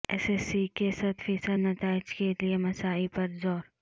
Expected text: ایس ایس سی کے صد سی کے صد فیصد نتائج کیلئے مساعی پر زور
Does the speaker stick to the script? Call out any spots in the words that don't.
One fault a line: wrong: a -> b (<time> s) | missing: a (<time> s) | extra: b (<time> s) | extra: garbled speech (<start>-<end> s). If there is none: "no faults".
missing: سی کے صد (1.2 s)